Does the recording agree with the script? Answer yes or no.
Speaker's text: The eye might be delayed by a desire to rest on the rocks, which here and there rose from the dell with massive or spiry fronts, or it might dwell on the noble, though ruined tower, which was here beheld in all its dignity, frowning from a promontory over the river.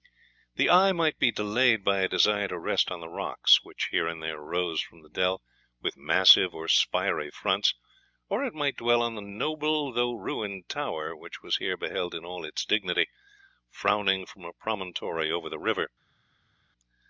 yes